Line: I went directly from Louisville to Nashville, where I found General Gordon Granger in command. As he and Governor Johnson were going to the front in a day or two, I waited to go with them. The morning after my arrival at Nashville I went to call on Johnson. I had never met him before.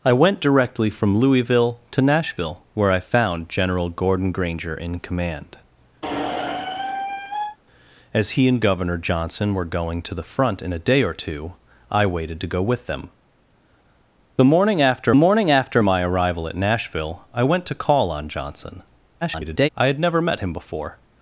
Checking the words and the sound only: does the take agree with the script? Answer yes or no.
no